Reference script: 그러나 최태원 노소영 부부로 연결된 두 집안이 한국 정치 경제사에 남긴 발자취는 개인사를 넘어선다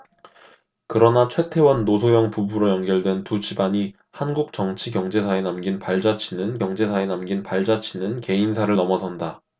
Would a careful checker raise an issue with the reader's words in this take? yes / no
yes